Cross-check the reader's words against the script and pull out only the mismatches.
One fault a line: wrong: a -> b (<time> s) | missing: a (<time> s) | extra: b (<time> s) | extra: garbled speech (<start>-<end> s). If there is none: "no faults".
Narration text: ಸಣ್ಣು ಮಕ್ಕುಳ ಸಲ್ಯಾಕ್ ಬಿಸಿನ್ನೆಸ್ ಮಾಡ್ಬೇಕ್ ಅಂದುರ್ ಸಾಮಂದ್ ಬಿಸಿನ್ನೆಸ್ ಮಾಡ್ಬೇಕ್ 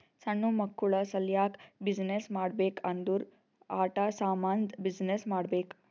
extra: ಆಟಾ (3.8 s)